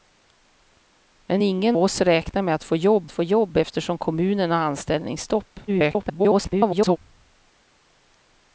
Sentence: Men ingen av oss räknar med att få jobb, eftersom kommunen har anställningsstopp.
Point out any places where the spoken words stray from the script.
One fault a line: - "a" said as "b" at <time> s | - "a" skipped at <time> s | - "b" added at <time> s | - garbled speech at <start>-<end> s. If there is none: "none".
- "av" skipped at 1.8 s
- "få jobb" added at 3.1 s
- garbled speech at 5.7-7.0 s